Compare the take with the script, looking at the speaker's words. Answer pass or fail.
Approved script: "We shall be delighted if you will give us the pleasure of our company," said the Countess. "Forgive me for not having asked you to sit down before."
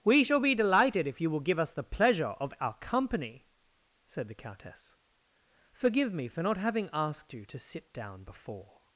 pass